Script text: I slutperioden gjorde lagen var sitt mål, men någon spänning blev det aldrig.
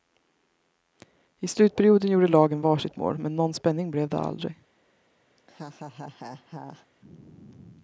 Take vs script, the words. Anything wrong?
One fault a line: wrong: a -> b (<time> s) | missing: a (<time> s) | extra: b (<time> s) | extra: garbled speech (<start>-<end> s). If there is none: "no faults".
no faults